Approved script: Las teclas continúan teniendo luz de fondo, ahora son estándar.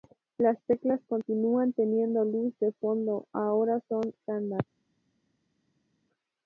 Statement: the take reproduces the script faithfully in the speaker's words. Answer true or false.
true